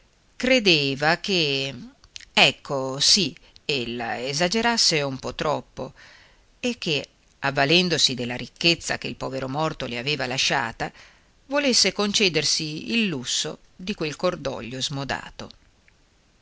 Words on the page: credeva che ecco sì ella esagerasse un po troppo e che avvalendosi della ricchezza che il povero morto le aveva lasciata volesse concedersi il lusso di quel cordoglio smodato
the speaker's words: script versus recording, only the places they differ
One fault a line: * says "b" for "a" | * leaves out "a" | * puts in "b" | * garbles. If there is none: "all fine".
all fine